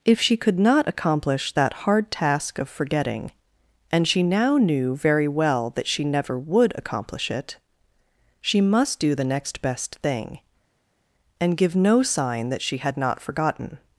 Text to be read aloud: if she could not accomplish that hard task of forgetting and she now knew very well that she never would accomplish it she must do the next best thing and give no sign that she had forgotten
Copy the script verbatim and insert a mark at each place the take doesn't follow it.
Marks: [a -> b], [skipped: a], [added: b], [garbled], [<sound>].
if she could not accomplish that hard task of forgetting and she now knew very well that she never would accomplish it she must do the next best thing and give no sign that she had [added: not] forgotten